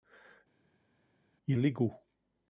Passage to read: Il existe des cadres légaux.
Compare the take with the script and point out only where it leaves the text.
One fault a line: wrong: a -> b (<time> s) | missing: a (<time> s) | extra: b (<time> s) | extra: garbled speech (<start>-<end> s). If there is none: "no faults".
missing: existe des cadres (1.6 s)